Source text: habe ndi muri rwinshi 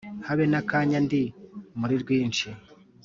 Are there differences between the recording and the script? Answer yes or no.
yes